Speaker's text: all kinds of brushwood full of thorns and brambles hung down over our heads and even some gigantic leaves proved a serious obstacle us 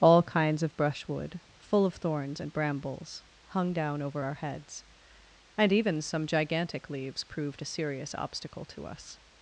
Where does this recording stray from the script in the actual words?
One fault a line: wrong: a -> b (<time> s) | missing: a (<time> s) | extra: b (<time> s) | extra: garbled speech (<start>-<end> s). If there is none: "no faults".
extra: to (8.7 s)